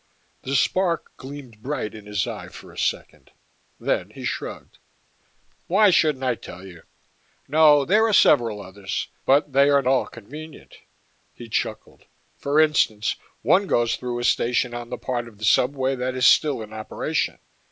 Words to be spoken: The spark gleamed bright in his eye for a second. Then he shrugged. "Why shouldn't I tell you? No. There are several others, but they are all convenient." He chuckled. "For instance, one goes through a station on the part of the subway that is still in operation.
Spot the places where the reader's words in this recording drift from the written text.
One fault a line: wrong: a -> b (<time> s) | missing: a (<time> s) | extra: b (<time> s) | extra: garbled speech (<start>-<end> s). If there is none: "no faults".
no faults